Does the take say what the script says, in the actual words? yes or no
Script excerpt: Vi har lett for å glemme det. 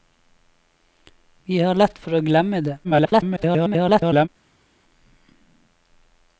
no